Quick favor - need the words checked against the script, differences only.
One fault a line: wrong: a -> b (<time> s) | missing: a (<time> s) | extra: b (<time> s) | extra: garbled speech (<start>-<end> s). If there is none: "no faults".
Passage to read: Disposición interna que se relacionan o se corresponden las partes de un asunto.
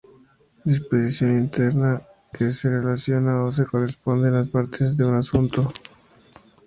no faults